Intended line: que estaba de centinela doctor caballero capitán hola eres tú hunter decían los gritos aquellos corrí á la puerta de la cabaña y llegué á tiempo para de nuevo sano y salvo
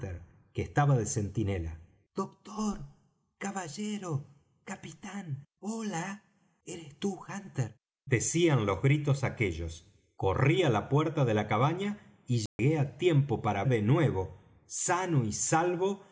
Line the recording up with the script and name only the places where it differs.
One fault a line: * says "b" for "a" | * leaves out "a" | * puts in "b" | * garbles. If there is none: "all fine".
all fine